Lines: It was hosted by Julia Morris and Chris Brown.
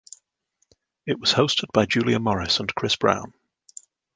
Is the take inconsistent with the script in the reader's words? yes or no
no